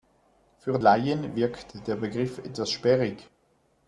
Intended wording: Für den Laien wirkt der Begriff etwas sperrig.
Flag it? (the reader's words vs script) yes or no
yes